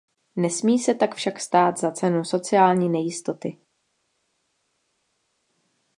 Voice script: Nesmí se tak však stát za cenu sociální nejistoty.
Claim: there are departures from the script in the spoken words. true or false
false